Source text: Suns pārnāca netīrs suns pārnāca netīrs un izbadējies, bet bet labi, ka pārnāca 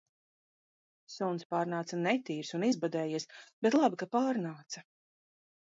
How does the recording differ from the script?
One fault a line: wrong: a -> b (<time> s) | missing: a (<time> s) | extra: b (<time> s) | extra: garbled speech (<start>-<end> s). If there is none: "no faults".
missing: suns pārnāca netīrs (2.5 s)
missing: bet (3.8 s)